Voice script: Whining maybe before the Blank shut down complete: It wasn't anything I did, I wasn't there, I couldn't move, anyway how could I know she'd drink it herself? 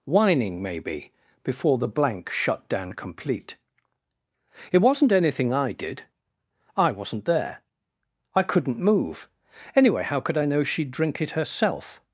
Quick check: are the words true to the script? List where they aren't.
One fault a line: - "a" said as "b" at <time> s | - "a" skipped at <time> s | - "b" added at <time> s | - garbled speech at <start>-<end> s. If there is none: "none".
none